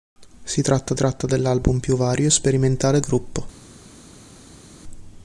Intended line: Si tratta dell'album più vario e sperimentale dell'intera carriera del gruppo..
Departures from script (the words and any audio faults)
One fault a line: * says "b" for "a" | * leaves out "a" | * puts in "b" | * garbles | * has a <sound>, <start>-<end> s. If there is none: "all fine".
* puts in "tratta"
* leaves out "dell'intera carriera del"